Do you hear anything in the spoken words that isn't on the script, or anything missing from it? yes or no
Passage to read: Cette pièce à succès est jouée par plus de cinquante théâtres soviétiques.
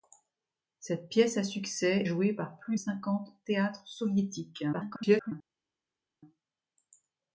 yes